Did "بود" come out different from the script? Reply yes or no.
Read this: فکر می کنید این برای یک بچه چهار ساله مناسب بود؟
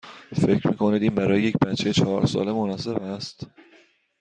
yes